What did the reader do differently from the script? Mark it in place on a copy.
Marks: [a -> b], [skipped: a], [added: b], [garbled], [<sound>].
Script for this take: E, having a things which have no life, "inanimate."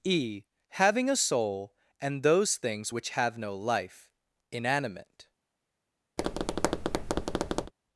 E, having a [added: soul and those] things which have no life, "inanimate." [tap]